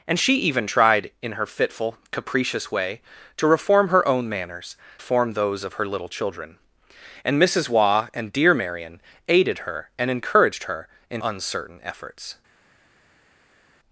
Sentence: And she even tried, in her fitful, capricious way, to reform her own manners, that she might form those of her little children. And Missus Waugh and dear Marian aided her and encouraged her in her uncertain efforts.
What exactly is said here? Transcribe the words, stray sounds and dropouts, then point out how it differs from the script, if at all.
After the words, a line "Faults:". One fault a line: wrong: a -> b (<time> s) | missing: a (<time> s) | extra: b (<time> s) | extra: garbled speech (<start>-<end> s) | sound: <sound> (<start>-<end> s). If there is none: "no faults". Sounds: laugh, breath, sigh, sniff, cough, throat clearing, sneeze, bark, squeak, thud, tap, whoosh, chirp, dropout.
And she even tried, in her fitful, capricious way, to reform her own manners, form those of her little children. And Missus Waugh and dear Marian aided her and encouraged her in uncertain efforts.
Faults:
missing: that she might (4.8 s)
missing: her (11.2 s)